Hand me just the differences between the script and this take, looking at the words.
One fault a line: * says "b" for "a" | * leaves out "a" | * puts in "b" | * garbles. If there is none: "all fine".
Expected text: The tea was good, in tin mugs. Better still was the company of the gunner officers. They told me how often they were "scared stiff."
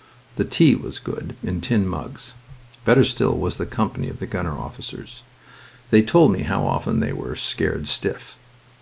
all fine